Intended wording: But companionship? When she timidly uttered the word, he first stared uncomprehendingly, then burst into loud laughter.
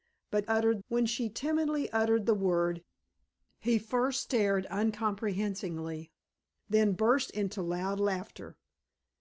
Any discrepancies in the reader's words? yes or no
yes